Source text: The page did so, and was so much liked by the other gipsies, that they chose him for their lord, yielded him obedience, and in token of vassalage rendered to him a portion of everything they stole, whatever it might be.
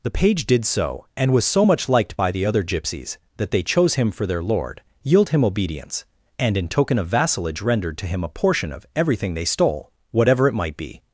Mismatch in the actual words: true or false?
true